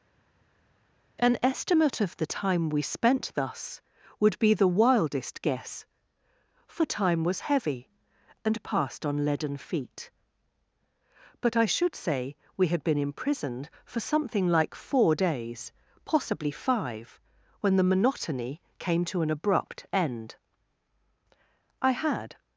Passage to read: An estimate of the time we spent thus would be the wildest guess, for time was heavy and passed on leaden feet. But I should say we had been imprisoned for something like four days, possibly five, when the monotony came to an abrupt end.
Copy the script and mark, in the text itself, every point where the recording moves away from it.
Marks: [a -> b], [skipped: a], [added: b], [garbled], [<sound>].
An estimate of the time we spent thus would be the wildest guess, for time was heavy and passed on leaden feet. But I should say we had been imprisoned for something like four days, possibly five, when the monotony came to an abrupt end. [added: I had]